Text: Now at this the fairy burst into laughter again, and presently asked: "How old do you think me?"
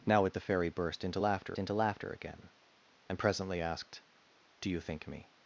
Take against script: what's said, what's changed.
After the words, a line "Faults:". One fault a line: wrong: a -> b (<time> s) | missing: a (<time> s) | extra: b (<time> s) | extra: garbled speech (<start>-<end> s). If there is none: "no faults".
Now at the fairy burst into laughter into laughter again, and presently asked: "Do you think me?"
Faults:
missing: this (0.3 s)
extra: into laughter (1.6 s)
missing: How old (4.0 s)